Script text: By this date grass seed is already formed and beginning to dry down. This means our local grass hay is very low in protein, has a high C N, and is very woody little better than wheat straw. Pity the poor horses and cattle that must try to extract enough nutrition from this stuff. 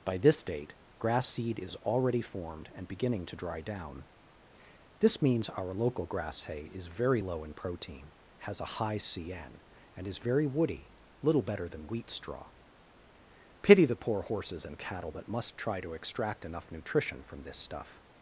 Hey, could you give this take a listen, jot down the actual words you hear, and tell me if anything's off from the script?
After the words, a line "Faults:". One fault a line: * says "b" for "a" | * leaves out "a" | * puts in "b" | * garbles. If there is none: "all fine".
By this date grass seed is already formed and beginning to dry down. This means our local grass hay is very low in protein, has a high C N, and is very woody little better than wheat straw. Pity the poor horses and cattle that must try to extract enough nutrition from this stuff.
Faults:
all fine